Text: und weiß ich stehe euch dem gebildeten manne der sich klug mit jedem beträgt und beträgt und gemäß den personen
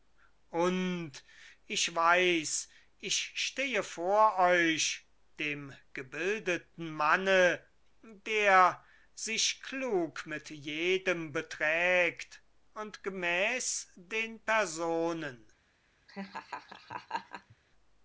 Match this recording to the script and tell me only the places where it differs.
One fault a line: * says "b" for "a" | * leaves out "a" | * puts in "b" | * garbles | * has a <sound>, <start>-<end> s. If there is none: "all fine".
* puts in "ich"
* puts in "vor"
* leaves out "beträgt und"
* has a laugh, 16.1-17.6 s